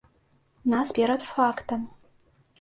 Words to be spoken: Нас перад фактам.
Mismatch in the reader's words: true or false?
false